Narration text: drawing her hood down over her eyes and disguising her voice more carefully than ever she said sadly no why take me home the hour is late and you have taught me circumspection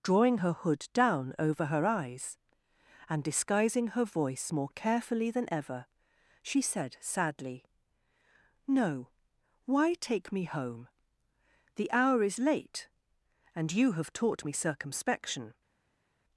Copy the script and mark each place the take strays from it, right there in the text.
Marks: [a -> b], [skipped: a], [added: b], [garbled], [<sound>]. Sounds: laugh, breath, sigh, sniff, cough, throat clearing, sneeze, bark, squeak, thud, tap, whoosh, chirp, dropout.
drawing her hood down over her eyes and disguising her voice more carefully than ever she said sadly no why take me home the hour is late and you have taught me circumspection